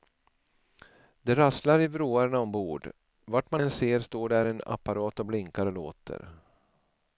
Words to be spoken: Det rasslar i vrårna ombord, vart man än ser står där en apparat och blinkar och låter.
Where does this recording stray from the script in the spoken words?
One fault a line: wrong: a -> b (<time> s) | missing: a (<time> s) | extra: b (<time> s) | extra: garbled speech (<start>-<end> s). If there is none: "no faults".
no faults